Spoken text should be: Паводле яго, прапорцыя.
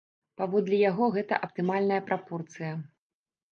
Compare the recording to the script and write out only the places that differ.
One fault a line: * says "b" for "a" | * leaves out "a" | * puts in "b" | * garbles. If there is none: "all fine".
* puts in "гэта аптымальная"